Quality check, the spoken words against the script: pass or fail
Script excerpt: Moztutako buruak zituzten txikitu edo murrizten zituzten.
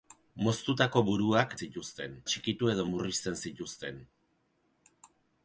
pass